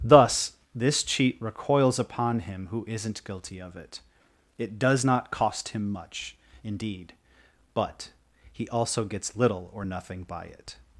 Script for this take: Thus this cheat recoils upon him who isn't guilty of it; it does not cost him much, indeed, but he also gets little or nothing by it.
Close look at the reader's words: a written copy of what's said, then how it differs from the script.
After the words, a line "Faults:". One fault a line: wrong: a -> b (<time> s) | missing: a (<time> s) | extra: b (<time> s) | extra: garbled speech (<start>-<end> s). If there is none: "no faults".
Thus this cheat recoils upon him who isn't guilty of it; it does not cost him much, indeed, but he also gets little or nothing by it.
Faults:
no faults